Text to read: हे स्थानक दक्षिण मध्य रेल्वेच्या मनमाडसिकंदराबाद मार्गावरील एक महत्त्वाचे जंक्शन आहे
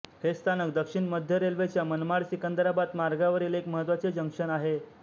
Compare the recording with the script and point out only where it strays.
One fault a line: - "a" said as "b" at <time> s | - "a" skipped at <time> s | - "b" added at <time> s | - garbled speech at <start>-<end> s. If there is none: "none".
none